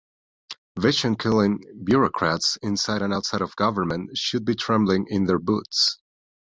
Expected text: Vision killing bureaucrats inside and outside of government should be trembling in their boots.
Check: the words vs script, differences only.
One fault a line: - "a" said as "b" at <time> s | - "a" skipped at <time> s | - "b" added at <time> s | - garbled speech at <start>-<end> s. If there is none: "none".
none